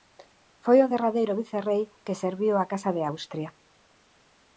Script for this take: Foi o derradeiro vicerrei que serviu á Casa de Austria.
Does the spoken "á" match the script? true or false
true